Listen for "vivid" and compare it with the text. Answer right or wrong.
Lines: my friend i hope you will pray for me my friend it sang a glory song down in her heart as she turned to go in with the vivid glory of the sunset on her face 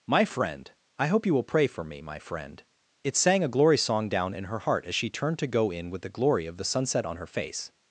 wrong